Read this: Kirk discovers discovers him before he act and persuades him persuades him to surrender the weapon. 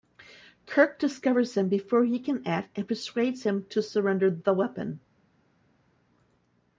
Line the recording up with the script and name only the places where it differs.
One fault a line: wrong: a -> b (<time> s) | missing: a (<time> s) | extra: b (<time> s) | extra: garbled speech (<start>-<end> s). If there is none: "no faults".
missing: discovers (1.6 s)
extra: can (2.2 s)
missing: persuades him (3.6 s)